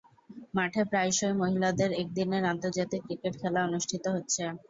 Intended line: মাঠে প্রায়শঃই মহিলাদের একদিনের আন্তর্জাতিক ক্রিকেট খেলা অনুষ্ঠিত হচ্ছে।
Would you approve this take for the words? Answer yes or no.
yes